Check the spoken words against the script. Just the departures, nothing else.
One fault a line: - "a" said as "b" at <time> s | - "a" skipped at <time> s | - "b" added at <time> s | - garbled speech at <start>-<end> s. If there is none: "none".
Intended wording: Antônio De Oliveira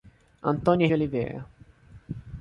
none